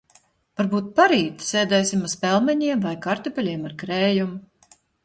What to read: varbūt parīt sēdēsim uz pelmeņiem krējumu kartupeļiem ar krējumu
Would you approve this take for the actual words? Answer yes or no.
no